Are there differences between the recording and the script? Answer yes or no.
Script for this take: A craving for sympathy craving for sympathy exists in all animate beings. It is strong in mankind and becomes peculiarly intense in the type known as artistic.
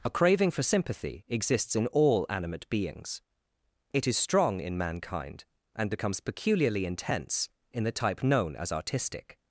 yes